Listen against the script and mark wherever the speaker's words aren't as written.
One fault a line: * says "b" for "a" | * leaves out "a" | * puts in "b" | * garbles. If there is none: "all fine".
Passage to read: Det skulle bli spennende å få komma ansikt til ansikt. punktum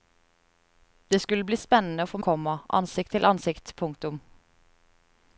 all fine